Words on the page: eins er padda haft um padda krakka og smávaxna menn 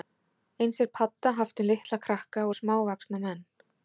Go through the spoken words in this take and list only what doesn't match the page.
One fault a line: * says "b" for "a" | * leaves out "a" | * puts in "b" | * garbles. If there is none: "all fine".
* says "litla" for "padda"